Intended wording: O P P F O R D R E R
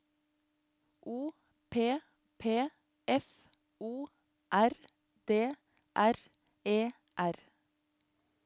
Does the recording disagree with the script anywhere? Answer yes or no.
no